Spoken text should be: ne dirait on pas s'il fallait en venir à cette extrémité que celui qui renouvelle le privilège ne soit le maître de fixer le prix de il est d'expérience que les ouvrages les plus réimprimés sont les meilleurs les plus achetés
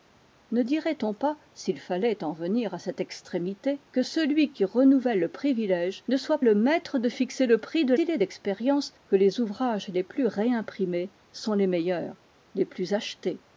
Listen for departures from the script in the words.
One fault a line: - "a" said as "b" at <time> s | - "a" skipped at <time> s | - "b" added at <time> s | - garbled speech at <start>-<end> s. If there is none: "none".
none